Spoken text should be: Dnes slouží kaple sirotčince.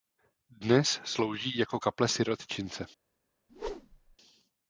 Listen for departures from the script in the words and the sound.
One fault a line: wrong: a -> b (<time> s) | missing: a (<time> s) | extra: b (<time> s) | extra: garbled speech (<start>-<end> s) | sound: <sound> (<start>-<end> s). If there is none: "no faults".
extra: jako (1.6 s)
sound: whoosh (3.5-4.2 s)